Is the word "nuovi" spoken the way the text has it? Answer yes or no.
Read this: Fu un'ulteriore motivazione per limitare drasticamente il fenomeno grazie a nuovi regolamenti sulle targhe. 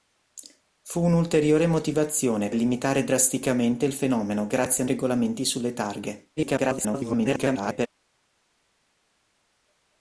no